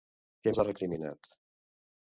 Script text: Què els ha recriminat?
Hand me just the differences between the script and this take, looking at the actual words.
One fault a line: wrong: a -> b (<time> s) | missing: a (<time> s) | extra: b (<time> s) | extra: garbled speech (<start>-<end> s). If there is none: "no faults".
no faults